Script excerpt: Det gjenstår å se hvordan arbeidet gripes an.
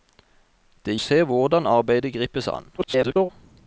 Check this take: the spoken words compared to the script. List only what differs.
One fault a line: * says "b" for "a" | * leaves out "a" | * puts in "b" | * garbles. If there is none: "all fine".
* leaves out "gjenstår"
* garbles